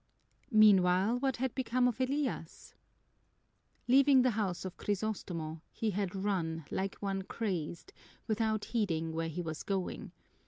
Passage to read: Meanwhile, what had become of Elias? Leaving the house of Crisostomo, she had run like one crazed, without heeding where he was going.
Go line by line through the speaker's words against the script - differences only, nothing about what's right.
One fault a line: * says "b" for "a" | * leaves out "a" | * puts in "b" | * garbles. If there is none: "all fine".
* says "he" for "she"